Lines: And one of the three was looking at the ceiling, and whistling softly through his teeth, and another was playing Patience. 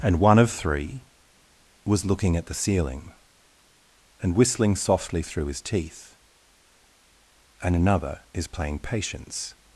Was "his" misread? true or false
false